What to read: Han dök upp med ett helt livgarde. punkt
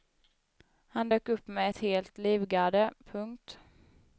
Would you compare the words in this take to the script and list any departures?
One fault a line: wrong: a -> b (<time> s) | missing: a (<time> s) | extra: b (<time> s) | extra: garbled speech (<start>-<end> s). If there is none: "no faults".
no faults